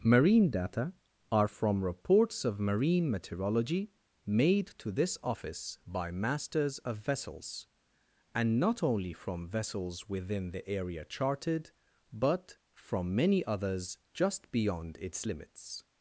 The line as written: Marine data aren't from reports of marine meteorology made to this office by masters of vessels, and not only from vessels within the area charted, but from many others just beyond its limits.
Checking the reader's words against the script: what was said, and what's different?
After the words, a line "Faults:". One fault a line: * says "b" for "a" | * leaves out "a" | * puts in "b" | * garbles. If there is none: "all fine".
Marine data are from reports of marine meteorology made to this office by masters of vessels, and not only from vessels within the area charted, but from many others just beyond its limits.
Faults:
* says "are" for "aren't"